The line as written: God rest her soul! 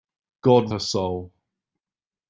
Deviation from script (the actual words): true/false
true